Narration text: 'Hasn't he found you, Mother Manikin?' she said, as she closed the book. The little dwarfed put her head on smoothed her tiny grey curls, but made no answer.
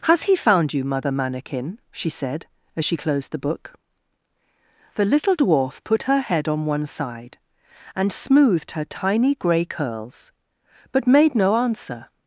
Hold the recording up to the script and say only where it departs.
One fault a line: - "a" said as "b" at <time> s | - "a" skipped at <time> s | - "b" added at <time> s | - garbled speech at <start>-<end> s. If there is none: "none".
- "Hasn't" said as "Has" at 0.0 s
- "dwarfed" said as "dwarf" at 5.4 s
- "one side and" added at 6.7 s